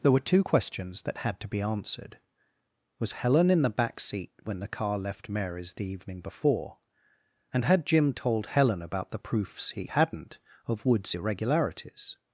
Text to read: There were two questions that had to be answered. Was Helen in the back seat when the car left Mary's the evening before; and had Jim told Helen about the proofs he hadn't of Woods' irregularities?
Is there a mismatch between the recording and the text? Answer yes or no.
no